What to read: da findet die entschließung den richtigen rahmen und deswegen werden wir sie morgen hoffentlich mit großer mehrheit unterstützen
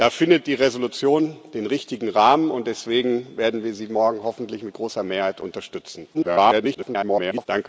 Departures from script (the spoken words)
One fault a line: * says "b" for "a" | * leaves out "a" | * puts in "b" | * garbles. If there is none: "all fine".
* garbles